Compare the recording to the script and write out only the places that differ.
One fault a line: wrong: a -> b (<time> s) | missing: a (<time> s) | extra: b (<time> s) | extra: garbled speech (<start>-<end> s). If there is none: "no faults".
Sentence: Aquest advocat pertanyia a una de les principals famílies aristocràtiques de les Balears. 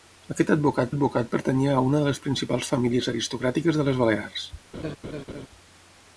extra: advocat (0.9 s)